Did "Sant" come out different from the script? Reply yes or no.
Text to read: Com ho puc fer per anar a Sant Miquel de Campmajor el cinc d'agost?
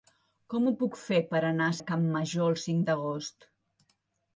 yes